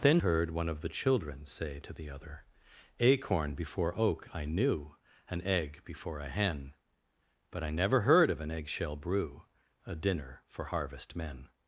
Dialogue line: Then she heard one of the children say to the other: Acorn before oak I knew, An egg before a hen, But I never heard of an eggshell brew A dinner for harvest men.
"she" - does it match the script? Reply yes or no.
no